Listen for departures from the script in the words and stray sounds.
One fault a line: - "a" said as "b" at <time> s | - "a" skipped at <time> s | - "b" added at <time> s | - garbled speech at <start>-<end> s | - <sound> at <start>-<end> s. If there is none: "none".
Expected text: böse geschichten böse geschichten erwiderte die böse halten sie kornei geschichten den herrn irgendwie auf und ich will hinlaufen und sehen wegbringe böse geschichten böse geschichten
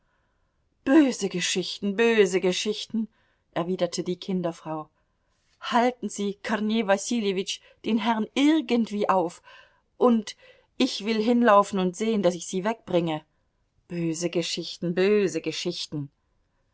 - "böse" said as "kinderfrau" at 4.2 s
- "geschichten" said as "wasiljewitsch" at 6.9 s
- "daß ich sie" added at 12.2 s